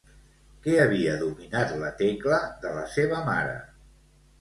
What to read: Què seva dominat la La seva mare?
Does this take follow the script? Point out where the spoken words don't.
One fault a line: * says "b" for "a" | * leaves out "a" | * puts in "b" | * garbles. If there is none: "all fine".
* says "havia" for "seva"
* puts in "Tecla de"